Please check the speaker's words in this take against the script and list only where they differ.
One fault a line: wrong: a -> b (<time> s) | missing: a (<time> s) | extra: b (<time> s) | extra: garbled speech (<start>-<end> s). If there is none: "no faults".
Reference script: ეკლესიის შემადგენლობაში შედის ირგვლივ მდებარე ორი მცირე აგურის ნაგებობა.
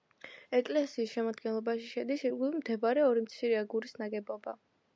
no faults